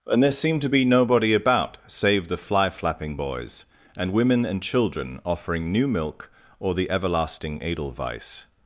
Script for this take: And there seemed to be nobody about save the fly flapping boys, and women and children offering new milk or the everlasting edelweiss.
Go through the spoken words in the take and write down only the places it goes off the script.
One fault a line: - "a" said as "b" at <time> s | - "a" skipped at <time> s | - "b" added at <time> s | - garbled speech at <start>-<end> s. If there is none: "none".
none